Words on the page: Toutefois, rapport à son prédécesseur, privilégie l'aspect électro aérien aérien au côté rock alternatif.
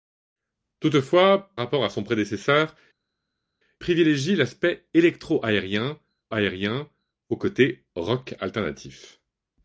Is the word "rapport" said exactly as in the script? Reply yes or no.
yes